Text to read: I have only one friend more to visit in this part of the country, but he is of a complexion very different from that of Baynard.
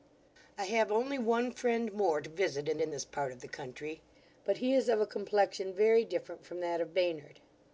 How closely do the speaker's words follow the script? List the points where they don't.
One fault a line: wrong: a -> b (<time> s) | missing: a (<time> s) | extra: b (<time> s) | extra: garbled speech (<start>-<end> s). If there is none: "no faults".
extra: in (2.8 s)